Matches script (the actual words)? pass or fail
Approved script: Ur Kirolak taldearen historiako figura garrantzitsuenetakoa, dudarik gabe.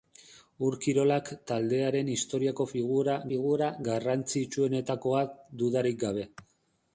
fail